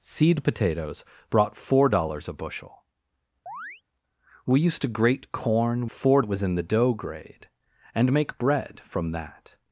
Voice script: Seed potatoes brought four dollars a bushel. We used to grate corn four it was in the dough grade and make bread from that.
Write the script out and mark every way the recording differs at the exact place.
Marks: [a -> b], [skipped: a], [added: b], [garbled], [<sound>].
Seed potatoes brought four dollars a bushel. [chirp] We used to grate corn four it was in the dough grade and make bread from that.